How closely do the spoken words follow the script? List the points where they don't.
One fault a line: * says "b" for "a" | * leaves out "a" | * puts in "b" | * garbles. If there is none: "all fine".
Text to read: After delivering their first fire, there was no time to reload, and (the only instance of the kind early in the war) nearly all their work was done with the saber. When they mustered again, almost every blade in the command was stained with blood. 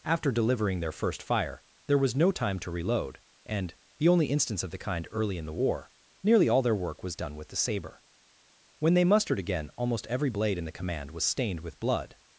all fine